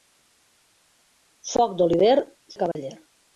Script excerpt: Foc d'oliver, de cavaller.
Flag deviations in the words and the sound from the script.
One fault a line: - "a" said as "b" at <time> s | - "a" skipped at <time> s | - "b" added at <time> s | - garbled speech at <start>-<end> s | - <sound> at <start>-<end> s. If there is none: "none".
- dropout at 2.7-2.8 s